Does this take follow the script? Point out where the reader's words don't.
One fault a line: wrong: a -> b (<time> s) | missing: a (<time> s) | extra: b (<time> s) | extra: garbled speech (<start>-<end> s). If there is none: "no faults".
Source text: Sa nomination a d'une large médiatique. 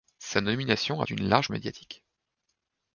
no faults